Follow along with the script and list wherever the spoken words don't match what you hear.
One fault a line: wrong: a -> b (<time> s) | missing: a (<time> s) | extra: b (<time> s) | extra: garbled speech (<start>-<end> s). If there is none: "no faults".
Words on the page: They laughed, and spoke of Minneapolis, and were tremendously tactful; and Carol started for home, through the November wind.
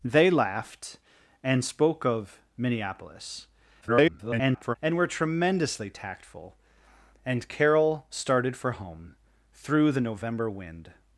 extra: garbled speech (3.8-4.8 s)